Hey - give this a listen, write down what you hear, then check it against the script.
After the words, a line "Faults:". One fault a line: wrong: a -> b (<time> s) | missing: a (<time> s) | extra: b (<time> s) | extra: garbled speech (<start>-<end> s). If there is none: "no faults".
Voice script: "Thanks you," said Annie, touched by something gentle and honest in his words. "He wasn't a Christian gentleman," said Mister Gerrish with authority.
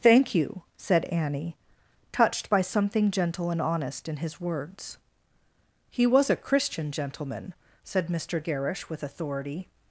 "Thank you," said Annie, touched by something gentle and honest in his words. "He was a Christian gentleman," said Mister Gerrish with authority.
Faults:
wrong: Thanks -> Thank (0.0 s)
wrong: wasn't -> was (6.1 s)